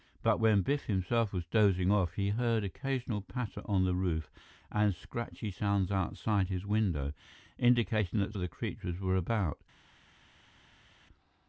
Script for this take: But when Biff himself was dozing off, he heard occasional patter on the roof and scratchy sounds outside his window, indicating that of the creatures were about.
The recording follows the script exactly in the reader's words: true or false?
true